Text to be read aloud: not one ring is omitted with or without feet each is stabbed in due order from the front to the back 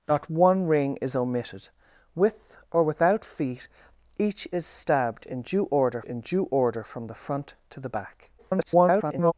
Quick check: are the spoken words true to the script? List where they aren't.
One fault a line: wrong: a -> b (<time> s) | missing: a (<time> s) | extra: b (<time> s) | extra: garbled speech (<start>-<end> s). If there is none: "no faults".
extra: in due order (6.0 s)
extra: garbled speech (8.4-9.3 s)